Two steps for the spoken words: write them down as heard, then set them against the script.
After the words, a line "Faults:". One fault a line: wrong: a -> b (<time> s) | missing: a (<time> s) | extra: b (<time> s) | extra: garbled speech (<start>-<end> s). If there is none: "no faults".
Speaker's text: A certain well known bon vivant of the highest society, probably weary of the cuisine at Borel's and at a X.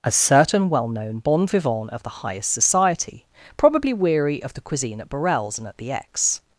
A certain well known bon vivant of the highest society, probably weary of the cuisine at Borel's and at the X.
Faults:
wrong: a -> the (5.8 s)